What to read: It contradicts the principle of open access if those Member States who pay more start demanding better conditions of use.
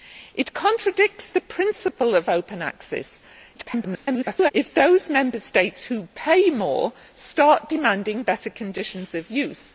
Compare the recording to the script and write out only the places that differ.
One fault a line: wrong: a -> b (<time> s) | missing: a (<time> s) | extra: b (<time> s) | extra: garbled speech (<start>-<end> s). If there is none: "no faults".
extra: garbled speech (3.5-4.5 s)